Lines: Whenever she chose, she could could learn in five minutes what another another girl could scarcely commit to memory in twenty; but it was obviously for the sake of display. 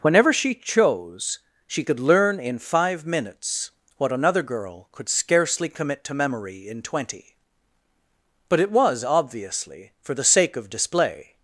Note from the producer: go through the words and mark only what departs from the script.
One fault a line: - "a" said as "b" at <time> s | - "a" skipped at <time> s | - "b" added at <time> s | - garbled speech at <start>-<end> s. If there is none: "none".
- "could" skipped at 2.0 s
- "another" skipped at 4.4 s